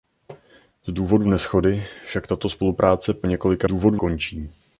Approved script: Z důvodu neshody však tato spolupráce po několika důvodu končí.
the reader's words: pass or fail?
pass